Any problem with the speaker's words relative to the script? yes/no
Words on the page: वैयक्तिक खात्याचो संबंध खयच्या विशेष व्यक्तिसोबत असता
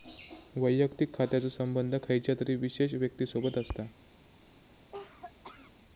yes